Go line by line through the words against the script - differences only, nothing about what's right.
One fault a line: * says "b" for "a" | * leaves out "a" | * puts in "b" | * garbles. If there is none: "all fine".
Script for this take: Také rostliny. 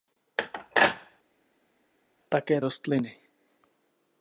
all fine